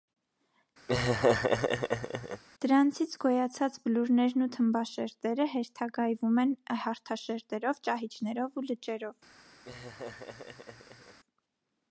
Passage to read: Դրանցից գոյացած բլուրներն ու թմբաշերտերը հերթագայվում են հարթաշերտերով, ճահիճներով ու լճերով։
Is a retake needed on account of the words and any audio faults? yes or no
yes